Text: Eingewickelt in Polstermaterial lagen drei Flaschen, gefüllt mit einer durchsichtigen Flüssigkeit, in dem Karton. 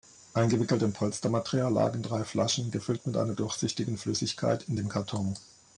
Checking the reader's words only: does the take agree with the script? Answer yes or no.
yes